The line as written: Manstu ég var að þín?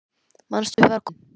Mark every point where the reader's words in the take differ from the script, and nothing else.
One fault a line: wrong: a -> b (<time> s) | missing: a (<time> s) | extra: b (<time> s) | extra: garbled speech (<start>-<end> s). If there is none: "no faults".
no faults